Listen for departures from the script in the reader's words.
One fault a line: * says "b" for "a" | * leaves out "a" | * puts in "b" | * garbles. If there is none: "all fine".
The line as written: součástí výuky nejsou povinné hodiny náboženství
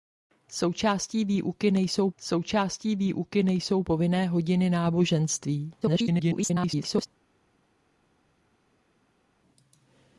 * puts in "součástí výuky nejsou"
* garbles